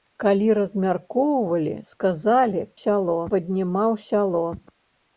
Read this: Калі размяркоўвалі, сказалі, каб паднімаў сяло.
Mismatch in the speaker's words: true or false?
true